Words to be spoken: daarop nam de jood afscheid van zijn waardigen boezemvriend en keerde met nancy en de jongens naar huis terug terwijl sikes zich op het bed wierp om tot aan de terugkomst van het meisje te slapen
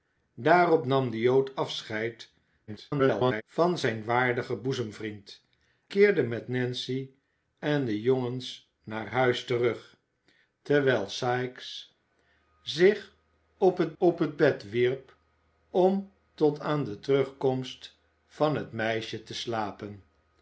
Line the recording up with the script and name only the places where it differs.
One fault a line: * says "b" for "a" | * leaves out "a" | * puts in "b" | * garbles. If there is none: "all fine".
* garbles
* leaves out "en"
* puts in "op het"